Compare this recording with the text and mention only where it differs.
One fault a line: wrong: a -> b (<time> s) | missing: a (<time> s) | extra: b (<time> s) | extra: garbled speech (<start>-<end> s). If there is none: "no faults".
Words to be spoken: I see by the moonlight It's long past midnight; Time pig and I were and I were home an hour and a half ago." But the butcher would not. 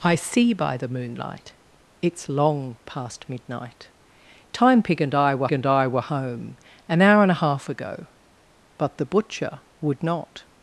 no faults